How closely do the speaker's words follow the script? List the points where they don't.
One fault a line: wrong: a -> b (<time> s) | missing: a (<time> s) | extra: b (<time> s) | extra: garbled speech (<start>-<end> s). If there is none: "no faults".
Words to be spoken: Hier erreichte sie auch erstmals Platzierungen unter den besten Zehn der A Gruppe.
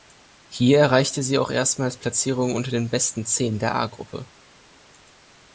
no faults